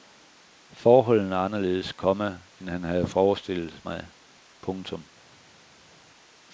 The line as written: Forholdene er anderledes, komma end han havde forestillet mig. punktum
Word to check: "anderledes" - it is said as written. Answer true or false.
true